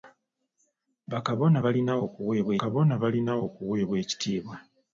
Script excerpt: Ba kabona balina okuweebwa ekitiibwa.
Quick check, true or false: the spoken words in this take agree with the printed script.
false